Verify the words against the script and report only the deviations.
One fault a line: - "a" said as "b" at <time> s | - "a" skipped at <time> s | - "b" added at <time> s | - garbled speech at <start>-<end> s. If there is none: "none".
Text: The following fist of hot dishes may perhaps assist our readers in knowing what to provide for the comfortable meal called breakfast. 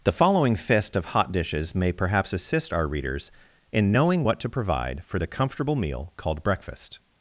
none